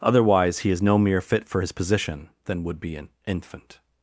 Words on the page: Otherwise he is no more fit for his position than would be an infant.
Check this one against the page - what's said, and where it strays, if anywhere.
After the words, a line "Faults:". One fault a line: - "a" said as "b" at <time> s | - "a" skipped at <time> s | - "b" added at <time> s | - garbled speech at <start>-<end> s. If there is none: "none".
Otherwise he is no mere fit for his position than would be an infant.
Faults:
- "more" said as "mere" at 1.0 s